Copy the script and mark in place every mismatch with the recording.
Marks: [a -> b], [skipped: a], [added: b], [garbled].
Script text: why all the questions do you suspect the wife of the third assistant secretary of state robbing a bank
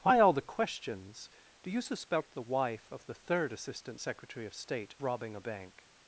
why all the questions do you suspect the wife of the third assistant secretary of state robbing a bank